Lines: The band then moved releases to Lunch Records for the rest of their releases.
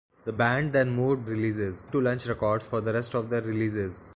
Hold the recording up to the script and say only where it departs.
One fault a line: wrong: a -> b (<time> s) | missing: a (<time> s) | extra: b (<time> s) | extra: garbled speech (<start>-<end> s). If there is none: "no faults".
no faults